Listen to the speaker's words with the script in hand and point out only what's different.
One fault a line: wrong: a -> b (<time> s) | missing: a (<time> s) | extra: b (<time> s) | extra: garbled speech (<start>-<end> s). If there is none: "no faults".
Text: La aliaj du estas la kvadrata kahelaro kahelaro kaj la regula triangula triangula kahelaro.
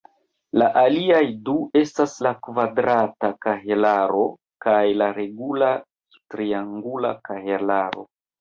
missing: kahelaro (4.3 s)
missing: triangula (7.2 s)